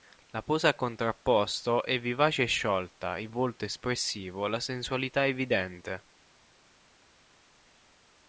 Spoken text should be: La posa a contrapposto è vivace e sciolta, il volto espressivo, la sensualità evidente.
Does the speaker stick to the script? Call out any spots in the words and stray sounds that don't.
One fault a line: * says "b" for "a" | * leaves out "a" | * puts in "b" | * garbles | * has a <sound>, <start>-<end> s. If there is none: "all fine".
all fine